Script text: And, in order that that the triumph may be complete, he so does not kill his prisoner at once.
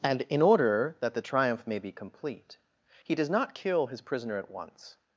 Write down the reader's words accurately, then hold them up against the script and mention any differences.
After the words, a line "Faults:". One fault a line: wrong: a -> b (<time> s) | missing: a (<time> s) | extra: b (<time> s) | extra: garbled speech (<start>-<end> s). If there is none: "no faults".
And, in order that the triumph may be complete, he does not kill his prisoner at once.
Faults:
missing: that (1.1 s)
missing: so (3.2 s)